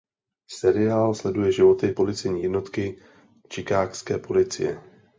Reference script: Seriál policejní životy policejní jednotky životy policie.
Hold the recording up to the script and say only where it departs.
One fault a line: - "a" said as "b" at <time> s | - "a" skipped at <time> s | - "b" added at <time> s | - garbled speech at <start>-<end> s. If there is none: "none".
- "policejní" said as "sleduje" at 1.1 s
- "životy" said as "chicagské" at 3.5 s